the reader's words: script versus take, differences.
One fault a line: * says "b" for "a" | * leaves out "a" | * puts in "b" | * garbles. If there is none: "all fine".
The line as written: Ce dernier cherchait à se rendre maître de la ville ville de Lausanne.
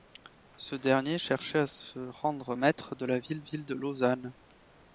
all fine